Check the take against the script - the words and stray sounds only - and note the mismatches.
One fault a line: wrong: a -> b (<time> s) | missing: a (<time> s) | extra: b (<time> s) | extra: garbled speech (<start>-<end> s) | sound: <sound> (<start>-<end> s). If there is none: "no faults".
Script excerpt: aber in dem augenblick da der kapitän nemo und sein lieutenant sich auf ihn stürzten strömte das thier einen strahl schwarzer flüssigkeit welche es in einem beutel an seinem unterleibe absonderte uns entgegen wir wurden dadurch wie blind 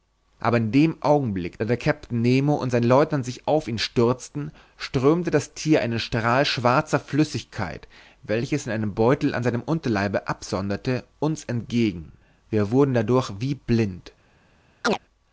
sound: chirp (14.8-15.0 s)